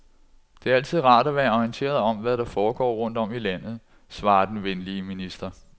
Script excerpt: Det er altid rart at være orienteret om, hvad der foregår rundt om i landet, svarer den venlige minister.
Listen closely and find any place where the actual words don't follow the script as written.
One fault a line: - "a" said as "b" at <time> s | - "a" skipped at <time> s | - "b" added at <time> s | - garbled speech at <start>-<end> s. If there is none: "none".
none